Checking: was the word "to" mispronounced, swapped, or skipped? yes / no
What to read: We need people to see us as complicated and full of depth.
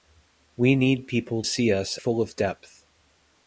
yes